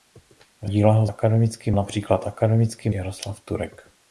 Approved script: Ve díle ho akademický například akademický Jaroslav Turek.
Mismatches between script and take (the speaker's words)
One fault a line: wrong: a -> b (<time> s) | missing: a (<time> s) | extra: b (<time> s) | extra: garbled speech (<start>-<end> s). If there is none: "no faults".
no faults